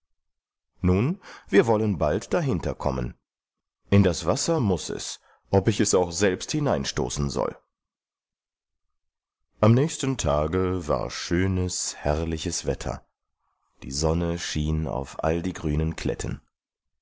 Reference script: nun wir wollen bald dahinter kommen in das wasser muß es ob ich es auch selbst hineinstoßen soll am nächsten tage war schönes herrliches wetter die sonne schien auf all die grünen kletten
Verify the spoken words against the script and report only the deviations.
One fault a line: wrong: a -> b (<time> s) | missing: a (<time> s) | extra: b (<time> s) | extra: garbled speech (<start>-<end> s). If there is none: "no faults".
no faults